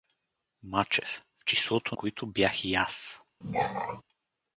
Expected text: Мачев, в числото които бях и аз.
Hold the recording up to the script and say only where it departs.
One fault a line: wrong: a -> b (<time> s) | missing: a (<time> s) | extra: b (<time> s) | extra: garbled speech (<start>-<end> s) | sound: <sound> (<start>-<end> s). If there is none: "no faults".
sound: throat clearing (3.4-4.0 s)